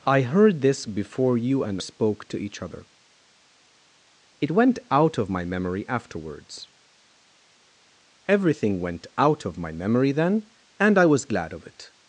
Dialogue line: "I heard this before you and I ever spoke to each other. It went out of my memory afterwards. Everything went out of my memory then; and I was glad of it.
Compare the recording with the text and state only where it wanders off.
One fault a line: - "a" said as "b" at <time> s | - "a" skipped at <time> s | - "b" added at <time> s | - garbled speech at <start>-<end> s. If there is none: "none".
- "I ever" skipped at 1.8 s